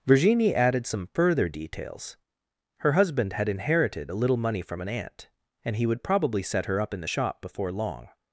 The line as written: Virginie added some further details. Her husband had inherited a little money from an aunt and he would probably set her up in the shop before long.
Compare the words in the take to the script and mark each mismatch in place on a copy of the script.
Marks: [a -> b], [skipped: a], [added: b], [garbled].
Virginie added some further details. Her husband had inherited a little money from an aunt and he would probably set her up in the shop before long.